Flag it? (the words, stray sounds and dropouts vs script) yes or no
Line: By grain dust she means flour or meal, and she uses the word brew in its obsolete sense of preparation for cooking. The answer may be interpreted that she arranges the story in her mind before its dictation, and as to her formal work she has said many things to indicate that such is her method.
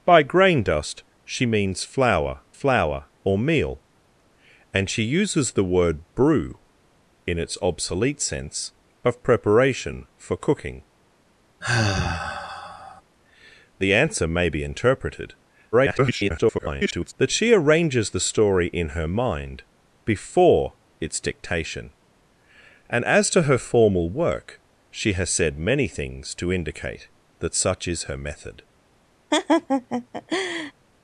yes